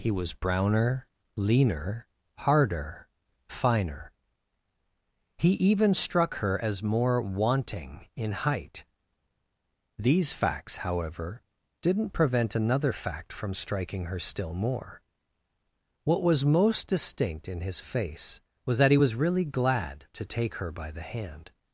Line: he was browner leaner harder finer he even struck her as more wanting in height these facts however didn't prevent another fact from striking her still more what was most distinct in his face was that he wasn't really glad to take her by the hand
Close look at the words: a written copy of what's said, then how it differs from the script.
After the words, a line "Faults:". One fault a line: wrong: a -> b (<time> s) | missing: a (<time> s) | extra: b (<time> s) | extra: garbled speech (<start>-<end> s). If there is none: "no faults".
he was browner leaner harder finer he even struck her as more wanting in height these facts however didn't prevent another fact from striking her still more what was most distinct in his face was that he was really glad to take her by the hand
Faults:
wrong: wasn't -> was (18.9 s)